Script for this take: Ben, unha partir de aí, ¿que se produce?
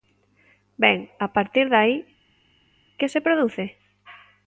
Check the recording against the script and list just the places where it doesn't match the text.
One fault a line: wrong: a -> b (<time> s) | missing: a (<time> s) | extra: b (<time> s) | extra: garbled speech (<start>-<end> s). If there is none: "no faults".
wrong: unha -> a (1.2 s)